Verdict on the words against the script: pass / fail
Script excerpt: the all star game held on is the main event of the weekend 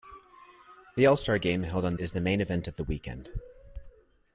pass